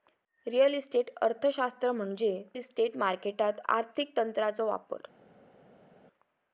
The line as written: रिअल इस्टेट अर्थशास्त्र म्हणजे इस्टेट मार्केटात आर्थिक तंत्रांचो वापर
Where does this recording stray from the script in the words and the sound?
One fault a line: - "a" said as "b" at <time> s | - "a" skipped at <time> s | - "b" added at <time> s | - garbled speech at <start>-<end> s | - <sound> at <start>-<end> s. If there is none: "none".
none